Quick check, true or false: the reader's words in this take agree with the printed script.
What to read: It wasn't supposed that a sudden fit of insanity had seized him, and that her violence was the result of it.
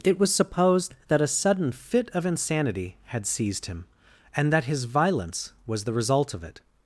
false